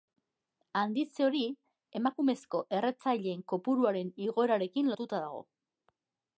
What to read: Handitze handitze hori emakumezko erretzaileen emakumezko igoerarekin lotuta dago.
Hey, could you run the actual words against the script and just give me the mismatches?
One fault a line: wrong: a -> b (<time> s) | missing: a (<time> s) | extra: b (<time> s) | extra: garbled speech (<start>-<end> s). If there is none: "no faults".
missing: handitze (1.2 s)
wrong: emakumezko -> kopuruaren (3.5 s)